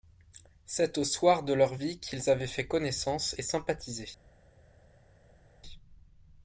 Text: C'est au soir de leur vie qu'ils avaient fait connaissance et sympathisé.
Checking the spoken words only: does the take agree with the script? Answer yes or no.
yes